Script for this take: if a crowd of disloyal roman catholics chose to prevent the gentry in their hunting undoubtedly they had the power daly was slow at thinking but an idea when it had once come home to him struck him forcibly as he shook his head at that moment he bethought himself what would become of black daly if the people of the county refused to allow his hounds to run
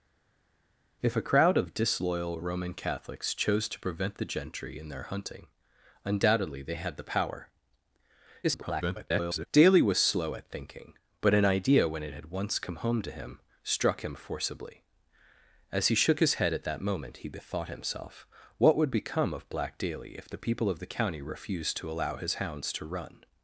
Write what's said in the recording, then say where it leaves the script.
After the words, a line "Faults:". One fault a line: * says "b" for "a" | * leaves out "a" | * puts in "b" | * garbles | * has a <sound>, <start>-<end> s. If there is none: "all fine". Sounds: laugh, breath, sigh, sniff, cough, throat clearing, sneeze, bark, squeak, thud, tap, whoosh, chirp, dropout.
if a crowd of disloyal roman catholics chose to prevent the gentry in their hunting undoubtedly they had the power [garbled] daly was slow at thinking but an idea when it had once come home to him struck him forcibly as he shook his head at that moment he bethought himself what would become of black daly if the people of the county refused to allow his hounds to run
Faults:
* garbles